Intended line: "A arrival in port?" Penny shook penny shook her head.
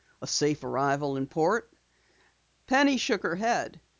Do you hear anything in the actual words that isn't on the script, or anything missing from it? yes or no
yes